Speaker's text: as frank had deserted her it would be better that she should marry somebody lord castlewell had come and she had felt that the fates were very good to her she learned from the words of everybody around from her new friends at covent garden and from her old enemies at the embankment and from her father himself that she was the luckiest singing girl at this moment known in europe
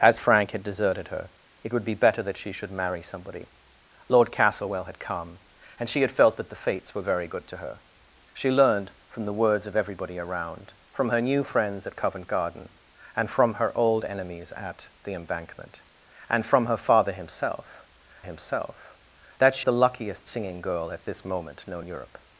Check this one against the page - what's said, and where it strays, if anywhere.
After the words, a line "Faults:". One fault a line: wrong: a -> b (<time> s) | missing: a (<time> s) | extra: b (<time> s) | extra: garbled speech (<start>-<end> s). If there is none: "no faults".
as frank had deserted her it would be better that she should marry somebody lord castlewell had come and she had felt that the fates were very good to her she learned from the words of everybody around from her new friends at covent garden and from her old enemies at the embankment and from her father himself himself that she the luckiest singing girl at this moment known europe
Faults:
extra: himself (18.2 s)
missing: was (19.7 s)
missing: in (21.9 s)